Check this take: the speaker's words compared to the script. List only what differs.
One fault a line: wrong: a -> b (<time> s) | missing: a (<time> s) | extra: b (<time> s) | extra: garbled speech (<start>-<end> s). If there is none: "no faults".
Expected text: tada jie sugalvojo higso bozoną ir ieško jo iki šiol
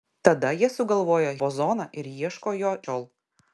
missing: higso (1.3 s)
missing: iki (2.8 s)